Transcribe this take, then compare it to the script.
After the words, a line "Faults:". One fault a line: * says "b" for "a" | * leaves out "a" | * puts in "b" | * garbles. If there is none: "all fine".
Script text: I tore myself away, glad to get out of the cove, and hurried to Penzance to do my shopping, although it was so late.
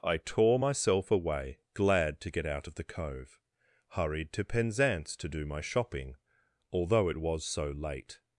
I tore myself away, glad to get out of the cove, hurried to Penzance to do my shopping, although it was so late.
Faults:
* leaves out "and"